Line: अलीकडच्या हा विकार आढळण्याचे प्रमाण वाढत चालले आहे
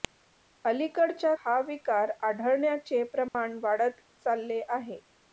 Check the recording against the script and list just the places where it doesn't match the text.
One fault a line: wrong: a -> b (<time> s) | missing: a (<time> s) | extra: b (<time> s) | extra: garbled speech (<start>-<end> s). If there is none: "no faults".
no faults